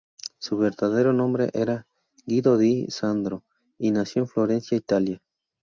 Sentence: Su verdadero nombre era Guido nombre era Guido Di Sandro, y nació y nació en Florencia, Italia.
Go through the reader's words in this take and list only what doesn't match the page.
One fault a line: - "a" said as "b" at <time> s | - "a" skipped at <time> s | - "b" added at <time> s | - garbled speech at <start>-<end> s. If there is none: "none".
- "nombre era Guido" skipped at 2.6 s
- "y nació" skipped at 4.2 s